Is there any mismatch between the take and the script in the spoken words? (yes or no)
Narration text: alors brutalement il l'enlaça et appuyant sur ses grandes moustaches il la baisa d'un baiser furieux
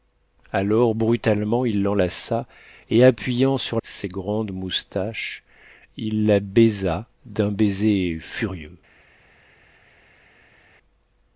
no